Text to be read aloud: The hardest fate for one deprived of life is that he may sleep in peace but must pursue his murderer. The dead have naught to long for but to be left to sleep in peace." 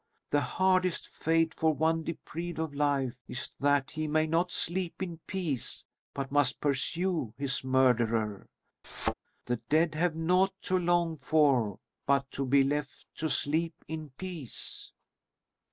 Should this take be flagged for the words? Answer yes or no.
yes